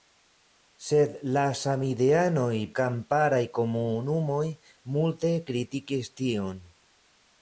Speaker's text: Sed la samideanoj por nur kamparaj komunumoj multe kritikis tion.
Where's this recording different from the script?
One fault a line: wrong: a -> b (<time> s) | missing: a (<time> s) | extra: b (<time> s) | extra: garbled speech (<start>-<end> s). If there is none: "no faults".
missing: por nur (2.5 s)